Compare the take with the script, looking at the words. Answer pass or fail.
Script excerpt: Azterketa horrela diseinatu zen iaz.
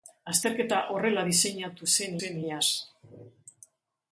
fail